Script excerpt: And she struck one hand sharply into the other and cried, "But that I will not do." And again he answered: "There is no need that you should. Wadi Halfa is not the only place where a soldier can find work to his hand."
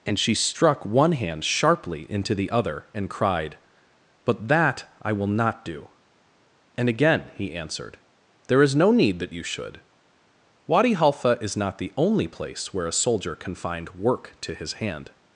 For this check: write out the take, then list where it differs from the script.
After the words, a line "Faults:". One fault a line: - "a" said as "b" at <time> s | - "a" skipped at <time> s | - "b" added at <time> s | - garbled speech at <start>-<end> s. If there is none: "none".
And she struck one hand sharply into the other and cried, "But that I will not do." And again he answered: "There is no need that you should. Wadi Halfa is not the only place where a soldier can find work to his hand."
Faults:
none